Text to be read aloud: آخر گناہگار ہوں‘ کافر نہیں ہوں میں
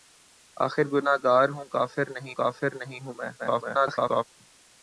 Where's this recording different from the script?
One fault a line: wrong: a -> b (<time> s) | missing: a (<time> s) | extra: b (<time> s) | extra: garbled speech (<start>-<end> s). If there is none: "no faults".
extra: کافر نہیں (2.3 s)
extra: garbled speech (3.4-4.2 s)